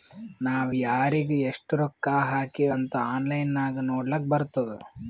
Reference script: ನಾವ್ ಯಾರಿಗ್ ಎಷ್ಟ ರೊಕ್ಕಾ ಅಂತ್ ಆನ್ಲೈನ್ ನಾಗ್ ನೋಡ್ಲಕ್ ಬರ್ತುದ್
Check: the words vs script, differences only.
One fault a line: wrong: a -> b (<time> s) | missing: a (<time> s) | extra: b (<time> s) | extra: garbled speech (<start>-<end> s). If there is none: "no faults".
extra: ಹಾಕಿವ್ (2.3 s)